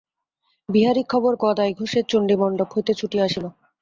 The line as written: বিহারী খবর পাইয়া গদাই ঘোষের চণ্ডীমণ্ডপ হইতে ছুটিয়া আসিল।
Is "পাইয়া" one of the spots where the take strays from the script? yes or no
yes